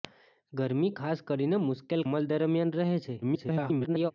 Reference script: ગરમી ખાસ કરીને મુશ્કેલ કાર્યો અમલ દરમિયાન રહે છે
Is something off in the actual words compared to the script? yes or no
yes